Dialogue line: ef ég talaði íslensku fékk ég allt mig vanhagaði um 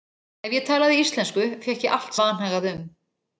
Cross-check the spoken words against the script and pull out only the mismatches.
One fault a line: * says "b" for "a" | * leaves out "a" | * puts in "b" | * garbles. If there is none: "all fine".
all fine